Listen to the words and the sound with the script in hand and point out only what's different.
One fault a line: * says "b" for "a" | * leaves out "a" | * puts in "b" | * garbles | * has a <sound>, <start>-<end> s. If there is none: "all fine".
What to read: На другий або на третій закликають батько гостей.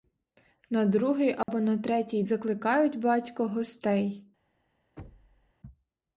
* has a dropout, 1.4-1.5 s
* has a thud, 5.0-5.5 s